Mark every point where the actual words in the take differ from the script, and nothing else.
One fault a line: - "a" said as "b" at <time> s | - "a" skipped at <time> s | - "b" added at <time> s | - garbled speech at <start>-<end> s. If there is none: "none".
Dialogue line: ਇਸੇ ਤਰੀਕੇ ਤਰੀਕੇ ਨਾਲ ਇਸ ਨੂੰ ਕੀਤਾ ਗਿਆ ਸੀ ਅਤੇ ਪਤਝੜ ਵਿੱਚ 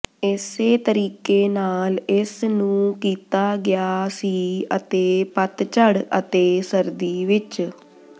- "ਤਰੀਕੇ" skipped at 1.5 s
- "ਅਤੇ ਸਰਦੀ" added at 6.2 s